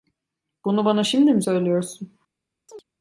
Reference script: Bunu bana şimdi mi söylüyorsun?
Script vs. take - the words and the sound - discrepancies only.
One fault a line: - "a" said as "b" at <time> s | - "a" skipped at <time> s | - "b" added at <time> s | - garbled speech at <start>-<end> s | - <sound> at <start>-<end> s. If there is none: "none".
- chirp at 2.7-2.8 s